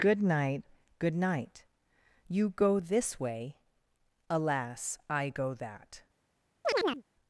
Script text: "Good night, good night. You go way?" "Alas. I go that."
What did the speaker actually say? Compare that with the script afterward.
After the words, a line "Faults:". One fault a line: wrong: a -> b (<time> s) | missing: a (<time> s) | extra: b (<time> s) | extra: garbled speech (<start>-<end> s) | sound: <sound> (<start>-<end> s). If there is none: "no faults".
"Good night, good night. You go this way?" "Alas. I go that."
Faults:
extra: this (2.8 s)
sound: chirp (6.6-7.0 s)